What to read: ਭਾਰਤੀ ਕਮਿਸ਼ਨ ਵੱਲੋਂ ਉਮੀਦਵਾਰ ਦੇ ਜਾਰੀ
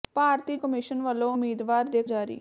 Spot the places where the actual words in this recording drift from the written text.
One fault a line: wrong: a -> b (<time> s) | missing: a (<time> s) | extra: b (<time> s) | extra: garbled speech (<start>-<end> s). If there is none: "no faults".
no faults